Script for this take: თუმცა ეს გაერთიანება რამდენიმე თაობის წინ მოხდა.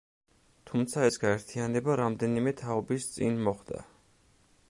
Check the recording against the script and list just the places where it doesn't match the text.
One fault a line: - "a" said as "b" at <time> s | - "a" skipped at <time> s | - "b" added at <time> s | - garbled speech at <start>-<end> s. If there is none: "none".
none